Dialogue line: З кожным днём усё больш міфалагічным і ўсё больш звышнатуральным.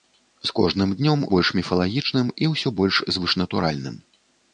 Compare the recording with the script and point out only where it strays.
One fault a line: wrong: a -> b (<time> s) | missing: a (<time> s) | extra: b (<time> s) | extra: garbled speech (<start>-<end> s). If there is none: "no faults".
missing: усё (1.2 s)